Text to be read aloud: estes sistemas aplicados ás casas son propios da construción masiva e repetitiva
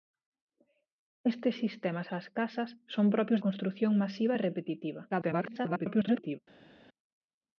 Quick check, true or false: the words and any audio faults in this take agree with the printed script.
false